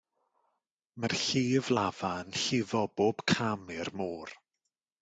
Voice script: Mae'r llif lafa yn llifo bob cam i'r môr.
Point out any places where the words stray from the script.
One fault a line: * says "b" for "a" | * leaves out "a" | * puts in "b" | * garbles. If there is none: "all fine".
all fine